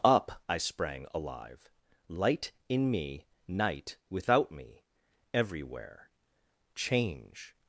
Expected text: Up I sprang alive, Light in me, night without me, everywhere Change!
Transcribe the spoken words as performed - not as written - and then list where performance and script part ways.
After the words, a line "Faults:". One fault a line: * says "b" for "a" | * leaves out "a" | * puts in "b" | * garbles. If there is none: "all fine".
Up I sprang alive, Light in me, night without me, everywhere Change!
Faults:
all fine